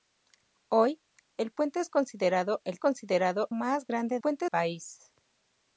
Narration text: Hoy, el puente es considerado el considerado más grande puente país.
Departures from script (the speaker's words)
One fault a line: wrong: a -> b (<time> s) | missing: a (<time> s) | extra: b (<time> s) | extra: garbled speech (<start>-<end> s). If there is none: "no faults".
no faults